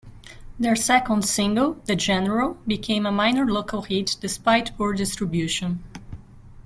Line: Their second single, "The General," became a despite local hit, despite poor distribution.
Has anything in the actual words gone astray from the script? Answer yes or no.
yes